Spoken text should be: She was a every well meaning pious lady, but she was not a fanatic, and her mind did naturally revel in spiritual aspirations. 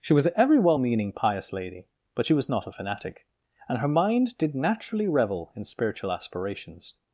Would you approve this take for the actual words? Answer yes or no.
yes